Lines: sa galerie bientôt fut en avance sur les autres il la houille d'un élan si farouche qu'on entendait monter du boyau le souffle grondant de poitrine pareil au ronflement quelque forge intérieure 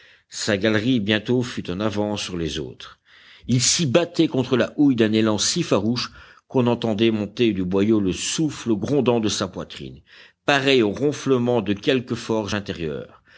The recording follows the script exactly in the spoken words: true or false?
false